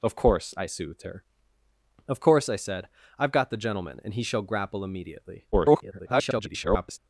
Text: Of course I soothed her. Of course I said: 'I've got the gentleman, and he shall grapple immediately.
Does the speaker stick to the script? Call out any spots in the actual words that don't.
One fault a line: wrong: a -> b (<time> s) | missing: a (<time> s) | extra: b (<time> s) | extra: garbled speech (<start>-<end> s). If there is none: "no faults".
extra: garbled speech (5.5-7.0 s)